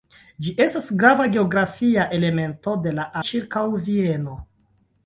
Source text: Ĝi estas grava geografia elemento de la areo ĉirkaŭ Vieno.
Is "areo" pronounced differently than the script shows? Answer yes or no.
yes